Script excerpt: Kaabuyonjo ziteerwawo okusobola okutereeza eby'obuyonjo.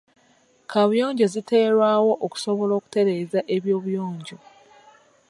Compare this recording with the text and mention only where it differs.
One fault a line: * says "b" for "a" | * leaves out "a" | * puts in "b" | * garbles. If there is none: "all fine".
all fine